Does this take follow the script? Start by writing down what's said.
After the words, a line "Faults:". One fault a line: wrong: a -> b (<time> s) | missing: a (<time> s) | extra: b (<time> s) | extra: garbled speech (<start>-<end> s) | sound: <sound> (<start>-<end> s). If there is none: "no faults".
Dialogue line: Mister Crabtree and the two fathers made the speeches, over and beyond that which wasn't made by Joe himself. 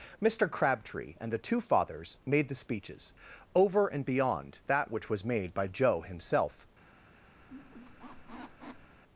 Mister Crabtree and the two fathers made the speeches, over and beyond that which was made by Joe himself.
Faults:
wrong: wasn't -> was (5.1 s)
sound: squeak (7.4-9.0 s)